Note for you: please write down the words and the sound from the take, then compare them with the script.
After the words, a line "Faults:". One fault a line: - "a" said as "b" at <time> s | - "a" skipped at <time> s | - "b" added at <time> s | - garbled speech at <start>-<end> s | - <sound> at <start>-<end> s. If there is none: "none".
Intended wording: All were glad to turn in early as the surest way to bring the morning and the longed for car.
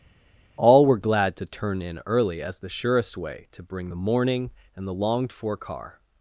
All were glad to turn in early as the surest way to bring the morning and the longed for car.
Faults:
none